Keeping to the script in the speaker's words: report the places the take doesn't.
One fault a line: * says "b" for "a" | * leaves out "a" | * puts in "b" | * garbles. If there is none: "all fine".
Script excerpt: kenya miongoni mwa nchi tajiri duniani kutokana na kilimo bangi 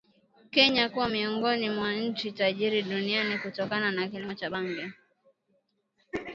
* puts in "kuwa"
* puts in "cha"